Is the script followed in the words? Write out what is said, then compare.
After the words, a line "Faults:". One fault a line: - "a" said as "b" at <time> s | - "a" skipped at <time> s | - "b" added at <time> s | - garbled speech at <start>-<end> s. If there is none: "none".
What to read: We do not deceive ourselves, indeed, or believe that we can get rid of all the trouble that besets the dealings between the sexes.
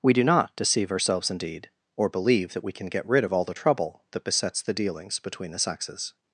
We do not deceive ourselves, indeed, or believe that we can get rid of all the trouble that besets the dealings between the sexes.
Faults:
none